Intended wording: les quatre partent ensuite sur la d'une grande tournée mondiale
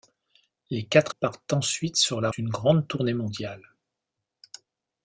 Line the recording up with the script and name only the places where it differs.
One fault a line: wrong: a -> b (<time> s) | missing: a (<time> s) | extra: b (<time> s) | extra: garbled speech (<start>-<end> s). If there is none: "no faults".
no faults